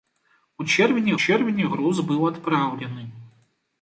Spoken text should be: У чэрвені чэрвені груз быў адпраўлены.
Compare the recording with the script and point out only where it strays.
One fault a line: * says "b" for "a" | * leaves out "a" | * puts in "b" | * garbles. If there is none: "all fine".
all fine